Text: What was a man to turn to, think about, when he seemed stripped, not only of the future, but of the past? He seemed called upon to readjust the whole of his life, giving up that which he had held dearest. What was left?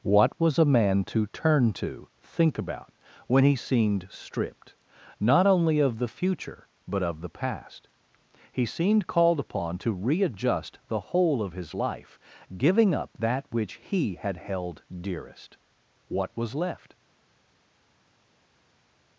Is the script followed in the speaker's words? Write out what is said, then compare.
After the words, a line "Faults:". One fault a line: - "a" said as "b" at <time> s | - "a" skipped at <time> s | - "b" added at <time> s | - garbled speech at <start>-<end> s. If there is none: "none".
What was a man to turn to, think about, when he seemed stripped, not only of the future, but of the past? He seemed called upon to readjust the whole of his life, giving up that which he had held dearest. What was left?
Faults:
none